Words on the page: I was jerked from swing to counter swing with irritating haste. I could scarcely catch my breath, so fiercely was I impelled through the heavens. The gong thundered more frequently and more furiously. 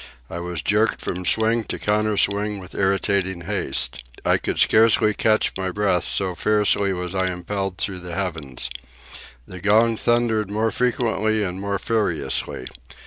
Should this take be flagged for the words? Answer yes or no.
no